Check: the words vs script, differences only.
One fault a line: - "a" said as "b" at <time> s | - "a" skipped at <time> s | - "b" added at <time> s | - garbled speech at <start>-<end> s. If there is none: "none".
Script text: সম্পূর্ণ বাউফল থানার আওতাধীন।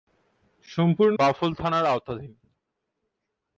none